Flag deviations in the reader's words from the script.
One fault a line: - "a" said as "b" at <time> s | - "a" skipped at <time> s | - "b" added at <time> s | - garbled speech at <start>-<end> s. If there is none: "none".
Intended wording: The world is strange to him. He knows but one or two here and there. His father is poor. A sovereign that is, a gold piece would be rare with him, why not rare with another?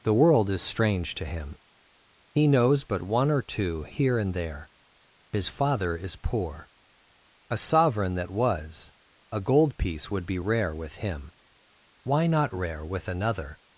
- "is" said as "was" at 8.3 s